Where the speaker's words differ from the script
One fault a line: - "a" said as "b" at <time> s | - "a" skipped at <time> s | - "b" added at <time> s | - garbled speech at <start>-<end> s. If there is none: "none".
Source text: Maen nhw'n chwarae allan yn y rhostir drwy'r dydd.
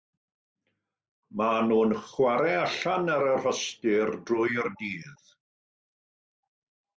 - "yn" said as "ar" at 3.2 s